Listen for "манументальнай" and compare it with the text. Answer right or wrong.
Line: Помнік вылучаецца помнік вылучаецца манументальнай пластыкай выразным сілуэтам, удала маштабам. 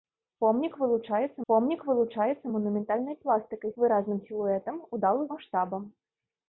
right